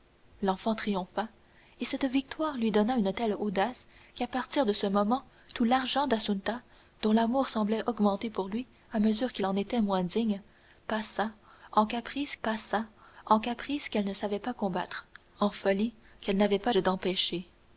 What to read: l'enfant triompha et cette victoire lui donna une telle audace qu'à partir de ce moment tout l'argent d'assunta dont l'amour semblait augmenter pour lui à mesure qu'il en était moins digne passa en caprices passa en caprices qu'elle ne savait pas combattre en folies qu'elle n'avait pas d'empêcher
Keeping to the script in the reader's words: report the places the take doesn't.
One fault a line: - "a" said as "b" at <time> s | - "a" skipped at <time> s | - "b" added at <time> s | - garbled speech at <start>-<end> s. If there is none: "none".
none